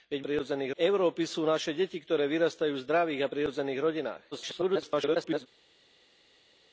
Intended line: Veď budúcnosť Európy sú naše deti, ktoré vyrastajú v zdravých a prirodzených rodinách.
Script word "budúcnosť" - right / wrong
wrong